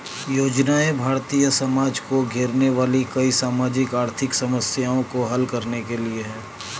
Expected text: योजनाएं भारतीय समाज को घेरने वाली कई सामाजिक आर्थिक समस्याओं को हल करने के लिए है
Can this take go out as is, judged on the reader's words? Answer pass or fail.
pass